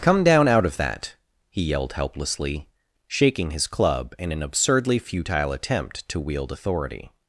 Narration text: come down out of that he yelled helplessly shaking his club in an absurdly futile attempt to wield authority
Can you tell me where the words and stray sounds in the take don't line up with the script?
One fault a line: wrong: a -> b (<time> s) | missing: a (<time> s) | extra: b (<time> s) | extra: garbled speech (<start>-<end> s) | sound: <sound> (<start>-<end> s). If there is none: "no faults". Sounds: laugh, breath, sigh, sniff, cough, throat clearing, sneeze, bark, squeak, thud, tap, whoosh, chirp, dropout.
no faults